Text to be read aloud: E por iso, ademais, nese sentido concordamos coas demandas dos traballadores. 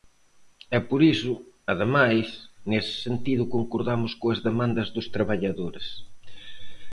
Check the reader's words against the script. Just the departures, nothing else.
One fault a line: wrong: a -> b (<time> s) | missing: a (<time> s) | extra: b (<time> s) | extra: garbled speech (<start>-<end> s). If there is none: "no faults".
no faults